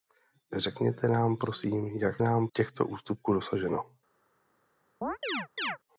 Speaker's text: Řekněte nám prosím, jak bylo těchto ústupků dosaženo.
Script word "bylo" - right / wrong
wrong